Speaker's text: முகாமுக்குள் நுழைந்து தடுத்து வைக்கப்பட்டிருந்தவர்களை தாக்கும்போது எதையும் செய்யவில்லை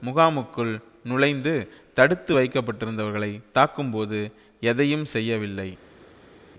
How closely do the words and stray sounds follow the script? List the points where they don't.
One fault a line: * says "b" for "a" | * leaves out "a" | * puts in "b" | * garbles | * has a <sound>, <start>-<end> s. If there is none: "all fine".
all fine